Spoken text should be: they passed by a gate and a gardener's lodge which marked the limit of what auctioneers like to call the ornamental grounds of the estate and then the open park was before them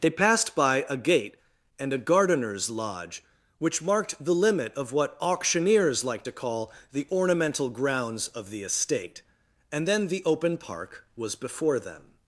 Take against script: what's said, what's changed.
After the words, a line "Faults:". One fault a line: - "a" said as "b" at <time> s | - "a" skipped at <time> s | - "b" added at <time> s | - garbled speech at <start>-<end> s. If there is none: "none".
they passed by a gate and a gardener's lodge which marked the limit of what auctioneers like to call the ornamental grounds of the estate and then the open park was before them
Faults:
none